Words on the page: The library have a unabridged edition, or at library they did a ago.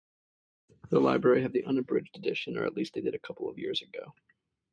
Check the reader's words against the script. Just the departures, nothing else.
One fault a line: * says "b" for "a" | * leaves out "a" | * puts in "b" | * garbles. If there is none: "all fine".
* says "the" for "a"
* says "least" for "library"
* puts in "couple of years"